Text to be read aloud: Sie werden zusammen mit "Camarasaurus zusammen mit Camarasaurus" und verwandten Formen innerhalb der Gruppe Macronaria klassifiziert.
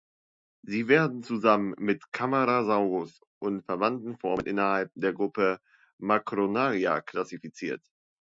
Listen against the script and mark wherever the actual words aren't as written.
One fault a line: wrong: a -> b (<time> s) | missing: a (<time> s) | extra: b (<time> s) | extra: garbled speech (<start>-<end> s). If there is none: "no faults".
missing: zusammen mit Camarasaurus (3.2 s)